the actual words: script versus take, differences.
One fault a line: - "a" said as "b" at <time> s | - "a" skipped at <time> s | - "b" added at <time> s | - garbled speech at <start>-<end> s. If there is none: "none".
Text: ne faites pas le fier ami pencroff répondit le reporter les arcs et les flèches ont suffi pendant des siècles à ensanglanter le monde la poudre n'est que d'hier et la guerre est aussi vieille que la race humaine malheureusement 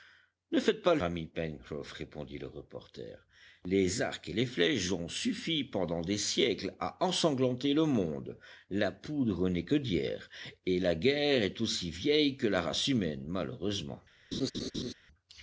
- "fier" skipped at 1.0 s